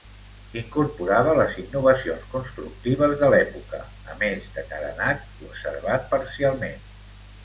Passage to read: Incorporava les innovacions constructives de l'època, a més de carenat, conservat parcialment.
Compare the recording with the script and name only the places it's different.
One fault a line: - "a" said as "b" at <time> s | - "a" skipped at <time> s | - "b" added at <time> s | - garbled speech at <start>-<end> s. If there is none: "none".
none